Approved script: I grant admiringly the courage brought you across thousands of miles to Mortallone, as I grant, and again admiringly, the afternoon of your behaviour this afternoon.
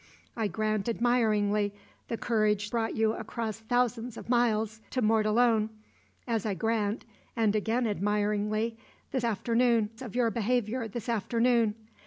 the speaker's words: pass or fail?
pass